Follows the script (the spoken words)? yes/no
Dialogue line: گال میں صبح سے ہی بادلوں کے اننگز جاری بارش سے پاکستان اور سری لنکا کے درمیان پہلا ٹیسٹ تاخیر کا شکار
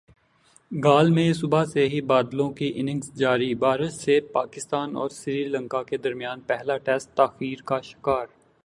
no